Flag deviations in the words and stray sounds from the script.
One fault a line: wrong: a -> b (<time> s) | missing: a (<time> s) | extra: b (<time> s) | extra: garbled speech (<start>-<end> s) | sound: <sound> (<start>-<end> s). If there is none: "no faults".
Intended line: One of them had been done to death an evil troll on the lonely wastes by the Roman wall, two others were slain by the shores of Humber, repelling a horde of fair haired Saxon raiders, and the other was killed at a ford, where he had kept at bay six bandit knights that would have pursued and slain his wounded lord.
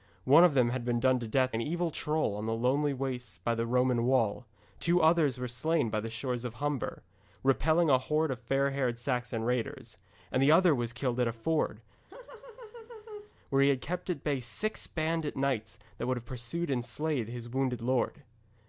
sound: laugh (12.1-13.3 s)